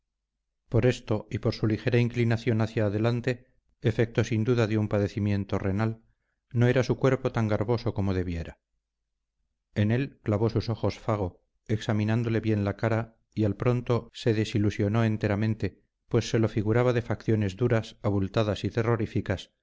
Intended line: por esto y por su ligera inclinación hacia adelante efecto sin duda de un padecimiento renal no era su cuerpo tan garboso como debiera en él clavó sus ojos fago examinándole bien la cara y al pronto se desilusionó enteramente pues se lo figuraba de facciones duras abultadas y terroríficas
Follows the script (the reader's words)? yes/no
yes